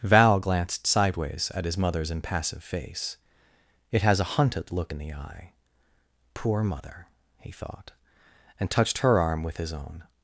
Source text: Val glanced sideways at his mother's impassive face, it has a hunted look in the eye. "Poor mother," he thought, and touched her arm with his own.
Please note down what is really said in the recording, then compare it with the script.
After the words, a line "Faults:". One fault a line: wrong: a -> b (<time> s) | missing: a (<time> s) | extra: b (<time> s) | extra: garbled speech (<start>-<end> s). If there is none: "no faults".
Val glanced sideways at his mother's impassive face, it has a hunted look in the eye. "Poor mother," he thought, and touched her arm with his own.
Faults:
no faults